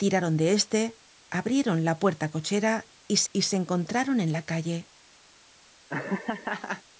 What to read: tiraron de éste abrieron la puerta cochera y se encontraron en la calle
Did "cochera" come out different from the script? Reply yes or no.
no